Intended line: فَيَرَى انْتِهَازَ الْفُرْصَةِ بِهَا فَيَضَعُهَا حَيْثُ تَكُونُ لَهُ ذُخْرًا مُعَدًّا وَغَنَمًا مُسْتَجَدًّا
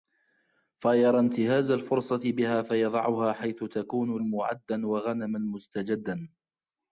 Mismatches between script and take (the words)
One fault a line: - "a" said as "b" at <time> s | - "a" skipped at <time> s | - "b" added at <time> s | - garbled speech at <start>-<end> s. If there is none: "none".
- "لَهُ ذُخْرًا" skipped at 4.2 s